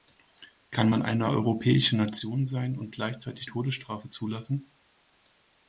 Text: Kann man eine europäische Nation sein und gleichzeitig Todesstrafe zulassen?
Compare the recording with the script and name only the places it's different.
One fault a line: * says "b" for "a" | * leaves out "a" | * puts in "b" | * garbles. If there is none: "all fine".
all fine